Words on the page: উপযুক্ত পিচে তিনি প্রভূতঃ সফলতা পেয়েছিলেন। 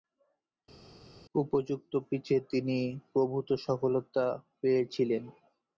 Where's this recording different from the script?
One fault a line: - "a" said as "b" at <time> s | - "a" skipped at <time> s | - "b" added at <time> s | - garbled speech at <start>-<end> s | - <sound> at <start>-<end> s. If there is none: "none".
none